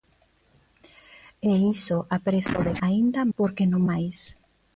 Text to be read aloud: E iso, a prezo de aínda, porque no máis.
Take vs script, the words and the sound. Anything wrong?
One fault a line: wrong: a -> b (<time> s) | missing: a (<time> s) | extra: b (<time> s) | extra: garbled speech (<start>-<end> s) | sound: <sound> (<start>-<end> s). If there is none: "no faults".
no faults